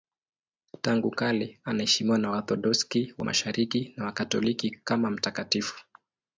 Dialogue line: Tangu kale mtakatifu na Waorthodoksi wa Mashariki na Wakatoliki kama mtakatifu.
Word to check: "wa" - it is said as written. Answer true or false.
true